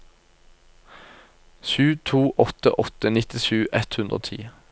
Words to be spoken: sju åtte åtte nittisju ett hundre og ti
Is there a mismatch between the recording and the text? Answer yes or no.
yes